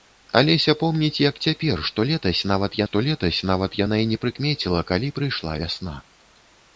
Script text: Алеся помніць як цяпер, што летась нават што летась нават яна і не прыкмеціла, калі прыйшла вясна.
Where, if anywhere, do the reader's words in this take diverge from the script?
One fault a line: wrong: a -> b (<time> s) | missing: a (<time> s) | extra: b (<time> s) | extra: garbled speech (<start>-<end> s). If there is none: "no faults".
no faults